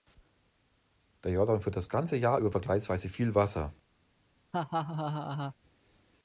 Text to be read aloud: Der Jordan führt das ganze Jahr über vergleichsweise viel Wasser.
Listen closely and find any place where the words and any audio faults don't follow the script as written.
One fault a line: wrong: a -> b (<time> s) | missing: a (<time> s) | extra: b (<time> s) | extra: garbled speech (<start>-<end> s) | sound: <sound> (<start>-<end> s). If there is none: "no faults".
sound: laugh (4.5-5.6 s)